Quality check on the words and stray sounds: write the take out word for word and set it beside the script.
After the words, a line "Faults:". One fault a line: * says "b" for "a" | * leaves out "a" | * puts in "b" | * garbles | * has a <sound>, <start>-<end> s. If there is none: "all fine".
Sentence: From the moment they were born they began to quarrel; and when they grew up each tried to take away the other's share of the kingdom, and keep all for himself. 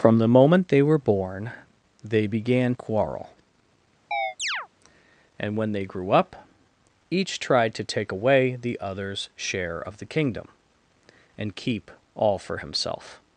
From the moment they were born they began quarrel; and when they grew up each tried to take away the other's share of the kingdom, and keep all for himself.
Faults:
* leaves out "to"
* has a chirp, 4.1-4.7 s